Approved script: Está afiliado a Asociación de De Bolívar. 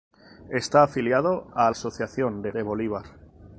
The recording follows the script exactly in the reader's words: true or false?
true